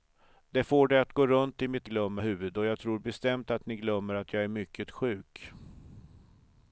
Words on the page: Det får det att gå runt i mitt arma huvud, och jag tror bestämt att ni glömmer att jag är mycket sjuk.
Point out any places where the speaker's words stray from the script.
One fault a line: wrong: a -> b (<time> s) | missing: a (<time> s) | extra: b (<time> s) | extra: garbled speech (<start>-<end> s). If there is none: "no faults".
wrong: arma -> glömmer (1.8 s)